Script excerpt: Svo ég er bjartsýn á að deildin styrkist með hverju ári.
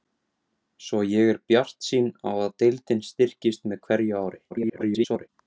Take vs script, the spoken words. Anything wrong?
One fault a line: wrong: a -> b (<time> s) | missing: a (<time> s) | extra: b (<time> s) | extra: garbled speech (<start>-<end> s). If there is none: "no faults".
extra: garbled speech (4.5-5.3 s)